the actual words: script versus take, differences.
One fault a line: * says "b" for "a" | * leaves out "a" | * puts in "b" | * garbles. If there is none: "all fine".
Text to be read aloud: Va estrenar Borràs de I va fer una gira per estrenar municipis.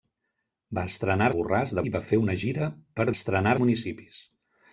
all fine